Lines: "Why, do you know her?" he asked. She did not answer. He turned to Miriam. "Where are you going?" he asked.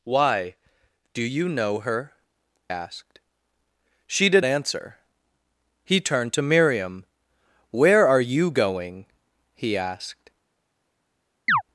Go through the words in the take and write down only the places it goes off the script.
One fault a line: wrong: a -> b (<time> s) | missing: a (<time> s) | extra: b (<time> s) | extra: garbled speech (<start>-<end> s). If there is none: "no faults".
missing: he (2.1 s)
missing: not (4.4 s)